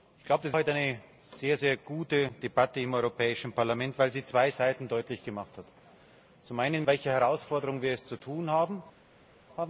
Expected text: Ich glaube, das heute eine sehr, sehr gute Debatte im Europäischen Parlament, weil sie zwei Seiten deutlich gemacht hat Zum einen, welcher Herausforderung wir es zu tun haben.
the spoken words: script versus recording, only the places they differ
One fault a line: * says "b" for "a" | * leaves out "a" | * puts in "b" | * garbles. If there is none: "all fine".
all fine